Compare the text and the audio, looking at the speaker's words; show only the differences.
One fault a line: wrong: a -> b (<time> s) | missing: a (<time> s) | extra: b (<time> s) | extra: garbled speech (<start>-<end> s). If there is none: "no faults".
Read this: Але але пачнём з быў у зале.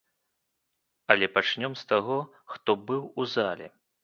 missing: але (1.3 s)
extra: таго хто (1.9 s)